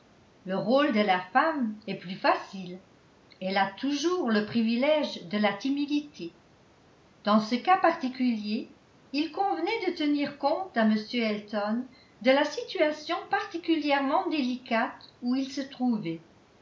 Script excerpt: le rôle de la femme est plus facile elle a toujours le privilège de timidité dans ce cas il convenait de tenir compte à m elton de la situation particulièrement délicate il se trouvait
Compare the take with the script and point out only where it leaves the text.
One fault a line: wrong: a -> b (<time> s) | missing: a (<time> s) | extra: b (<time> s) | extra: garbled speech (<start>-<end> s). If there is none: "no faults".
extra: la (5.4 s)
extra: particulier (7.8 s)
extra: où (15.2 s)